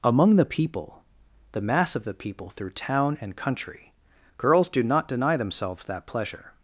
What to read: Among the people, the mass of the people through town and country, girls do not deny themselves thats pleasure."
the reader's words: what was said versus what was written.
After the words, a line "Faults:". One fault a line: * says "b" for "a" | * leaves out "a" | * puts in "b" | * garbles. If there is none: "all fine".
Among the people, the mass of the people through town and country, girls do not deny themselves that pleasure."
Faults:
* says "that" for "thats"